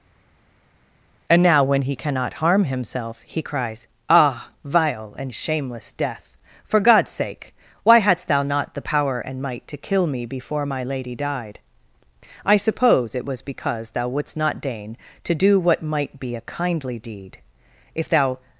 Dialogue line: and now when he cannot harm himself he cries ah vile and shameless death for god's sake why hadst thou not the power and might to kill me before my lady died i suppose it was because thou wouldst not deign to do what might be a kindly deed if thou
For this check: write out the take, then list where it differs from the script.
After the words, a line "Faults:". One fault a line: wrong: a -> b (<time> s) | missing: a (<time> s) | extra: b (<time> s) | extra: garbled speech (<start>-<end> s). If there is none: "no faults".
and now when he cannot harm himself he cries ah vile and shameless death for god's sake why hadst thou not the power and might to kill me before my lady died i suppose it was because thou wouldst not deign to do what might be a kindly deed if thou
Faults:
no faults